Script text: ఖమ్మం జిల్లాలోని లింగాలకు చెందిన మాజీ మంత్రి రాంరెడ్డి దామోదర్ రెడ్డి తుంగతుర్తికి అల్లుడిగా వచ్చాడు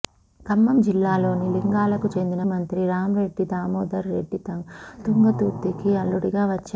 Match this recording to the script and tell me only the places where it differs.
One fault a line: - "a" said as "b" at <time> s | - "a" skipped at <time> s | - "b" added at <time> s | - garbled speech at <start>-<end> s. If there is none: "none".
- "మాజీ" skipped at 2.4 s